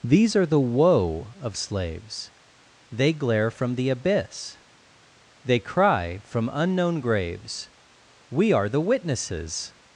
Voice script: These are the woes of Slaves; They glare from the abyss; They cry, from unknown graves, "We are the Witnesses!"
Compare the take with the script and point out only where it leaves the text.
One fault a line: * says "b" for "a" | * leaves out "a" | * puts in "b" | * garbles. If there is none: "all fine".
* says "woe" for "woes"